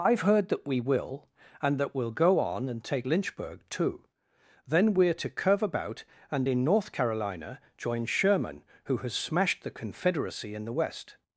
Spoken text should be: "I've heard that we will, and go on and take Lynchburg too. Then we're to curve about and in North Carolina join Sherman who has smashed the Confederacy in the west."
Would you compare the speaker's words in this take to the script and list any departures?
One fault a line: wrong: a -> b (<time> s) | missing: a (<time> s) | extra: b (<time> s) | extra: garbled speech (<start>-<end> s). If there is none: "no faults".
extra: that we'll (1.8 s)